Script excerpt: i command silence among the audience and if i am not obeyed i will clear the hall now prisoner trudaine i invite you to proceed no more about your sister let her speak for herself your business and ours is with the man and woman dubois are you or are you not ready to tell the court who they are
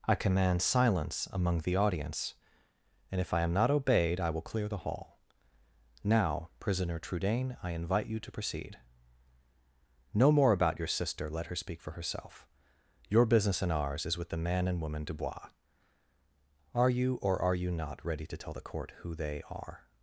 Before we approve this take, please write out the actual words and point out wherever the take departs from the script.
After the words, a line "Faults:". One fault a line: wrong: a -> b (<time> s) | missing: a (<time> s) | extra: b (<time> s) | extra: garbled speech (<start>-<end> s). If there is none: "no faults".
i command silence among the audience and if i am not obeyed i will clear the hall now prisoner trudaine i invite you to proceed no more about your sister let her speak for herself your business and ours is with the man and woman dubois are you or are you not ready to tell the court who they are
Faults:
no faults